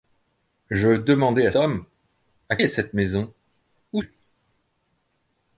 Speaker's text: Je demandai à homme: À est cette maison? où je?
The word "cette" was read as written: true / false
true